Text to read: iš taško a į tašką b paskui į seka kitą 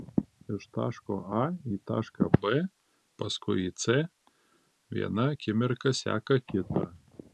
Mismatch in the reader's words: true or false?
true